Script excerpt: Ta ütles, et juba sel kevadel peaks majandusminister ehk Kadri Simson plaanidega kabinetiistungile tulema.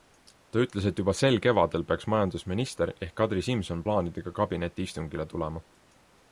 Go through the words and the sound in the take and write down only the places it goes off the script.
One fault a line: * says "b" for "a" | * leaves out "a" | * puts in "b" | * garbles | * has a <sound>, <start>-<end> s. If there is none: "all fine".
all fine